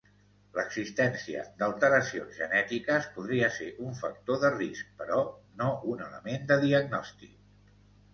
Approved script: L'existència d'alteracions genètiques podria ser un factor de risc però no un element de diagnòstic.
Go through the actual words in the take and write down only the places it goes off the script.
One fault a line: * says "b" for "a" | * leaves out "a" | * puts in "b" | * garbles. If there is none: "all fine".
all fine